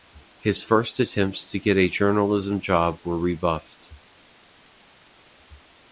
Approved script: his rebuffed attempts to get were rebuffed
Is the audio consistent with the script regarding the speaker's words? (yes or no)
no